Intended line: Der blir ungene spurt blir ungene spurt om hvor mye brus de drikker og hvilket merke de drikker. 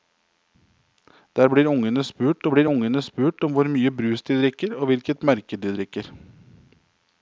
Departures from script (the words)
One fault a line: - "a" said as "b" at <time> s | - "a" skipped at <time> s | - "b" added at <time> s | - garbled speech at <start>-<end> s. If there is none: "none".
none